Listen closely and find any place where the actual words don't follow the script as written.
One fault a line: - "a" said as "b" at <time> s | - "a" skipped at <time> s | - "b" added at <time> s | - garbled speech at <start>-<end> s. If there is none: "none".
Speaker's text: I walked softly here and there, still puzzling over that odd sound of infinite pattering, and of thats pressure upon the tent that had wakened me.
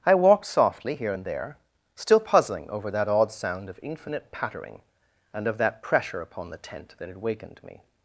- "thats" said as "that" at 5.6 s